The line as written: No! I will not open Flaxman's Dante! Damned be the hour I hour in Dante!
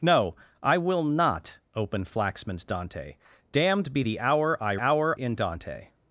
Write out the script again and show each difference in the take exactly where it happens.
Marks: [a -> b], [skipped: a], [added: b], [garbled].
No! I will not open Flaxman's Dante! Damned be the hour I hour in Dante!